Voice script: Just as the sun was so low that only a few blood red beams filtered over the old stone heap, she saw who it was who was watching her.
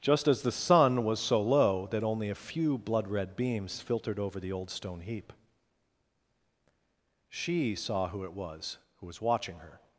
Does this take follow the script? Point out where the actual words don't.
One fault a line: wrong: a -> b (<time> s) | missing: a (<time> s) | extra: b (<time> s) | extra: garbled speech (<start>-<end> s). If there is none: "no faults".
no faults